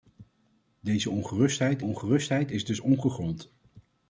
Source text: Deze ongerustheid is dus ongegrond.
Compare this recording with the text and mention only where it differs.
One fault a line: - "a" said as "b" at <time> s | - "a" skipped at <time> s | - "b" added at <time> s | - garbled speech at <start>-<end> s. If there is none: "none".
- "ongerustheid" added at 1.8 s